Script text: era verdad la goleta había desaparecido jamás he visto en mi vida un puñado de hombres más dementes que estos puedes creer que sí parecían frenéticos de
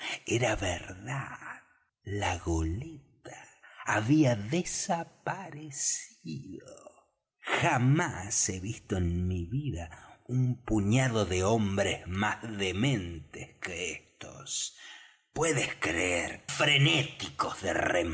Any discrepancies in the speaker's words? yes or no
yes